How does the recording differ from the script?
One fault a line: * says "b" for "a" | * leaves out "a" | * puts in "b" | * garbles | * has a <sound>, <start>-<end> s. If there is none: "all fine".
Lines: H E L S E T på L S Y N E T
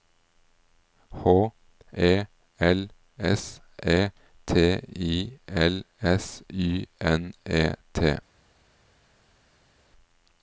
* says "I" for "på"